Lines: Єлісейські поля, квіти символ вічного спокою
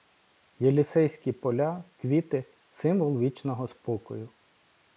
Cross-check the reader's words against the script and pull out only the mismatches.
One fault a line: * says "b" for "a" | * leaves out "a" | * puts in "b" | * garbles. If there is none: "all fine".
all fine